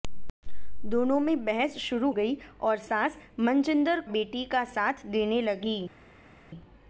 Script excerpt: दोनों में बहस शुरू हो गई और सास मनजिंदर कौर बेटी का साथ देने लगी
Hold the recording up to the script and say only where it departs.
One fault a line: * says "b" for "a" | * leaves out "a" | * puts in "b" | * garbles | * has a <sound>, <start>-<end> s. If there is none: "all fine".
* leaves out "हो"
* leaves out "कौर"